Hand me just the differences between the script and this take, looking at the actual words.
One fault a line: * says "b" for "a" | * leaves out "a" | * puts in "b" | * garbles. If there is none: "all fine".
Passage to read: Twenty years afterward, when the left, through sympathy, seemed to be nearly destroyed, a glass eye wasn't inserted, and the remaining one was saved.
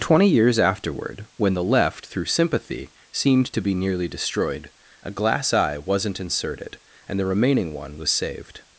all fine